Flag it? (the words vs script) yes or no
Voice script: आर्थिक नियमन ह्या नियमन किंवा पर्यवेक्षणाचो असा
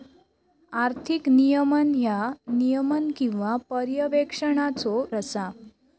no